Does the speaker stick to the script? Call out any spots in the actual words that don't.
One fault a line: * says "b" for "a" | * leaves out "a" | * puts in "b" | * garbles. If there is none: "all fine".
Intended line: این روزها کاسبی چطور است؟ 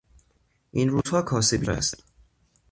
* leaves out "چطور"